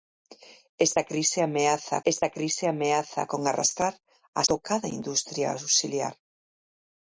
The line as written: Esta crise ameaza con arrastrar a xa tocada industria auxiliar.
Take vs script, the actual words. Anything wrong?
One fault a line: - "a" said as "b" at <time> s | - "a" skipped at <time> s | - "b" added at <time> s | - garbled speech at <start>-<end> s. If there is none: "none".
- "esta crise ameaza" added at 2.1 s
- "xa" skipped at 4.4 s